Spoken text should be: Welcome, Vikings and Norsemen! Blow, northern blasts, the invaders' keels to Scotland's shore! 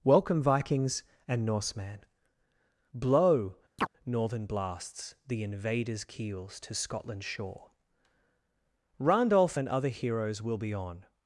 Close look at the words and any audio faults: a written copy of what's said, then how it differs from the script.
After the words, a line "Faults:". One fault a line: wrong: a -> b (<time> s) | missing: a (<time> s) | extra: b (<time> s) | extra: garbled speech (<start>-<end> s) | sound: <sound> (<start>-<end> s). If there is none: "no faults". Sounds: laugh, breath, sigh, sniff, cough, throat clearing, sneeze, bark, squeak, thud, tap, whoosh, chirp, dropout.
Welcome, Vikings and Norsemen! Blow, northern blasts, the invaders' keels to Scotland's shore! Randolph and other heroes will be on
Faults:
sound: chirp (3.8-3.9 s)
extra: Randolph and other heroes will be on (9.0 s)